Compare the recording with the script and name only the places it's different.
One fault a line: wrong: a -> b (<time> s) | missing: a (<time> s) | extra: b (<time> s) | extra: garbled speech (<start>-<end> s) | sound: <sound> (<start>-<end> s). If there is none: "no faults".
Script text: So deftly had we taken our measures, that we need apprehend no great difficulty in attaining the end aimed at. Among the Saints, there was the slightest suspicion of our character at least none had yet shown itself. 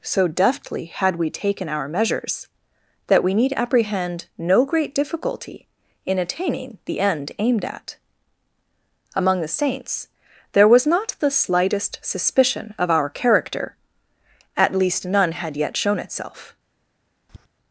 extra: not (10.9 s)
sound: tap (17.3-17.5 s)